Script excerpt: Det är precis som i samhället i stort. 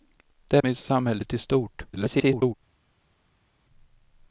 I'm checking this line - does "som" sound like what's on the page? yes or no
no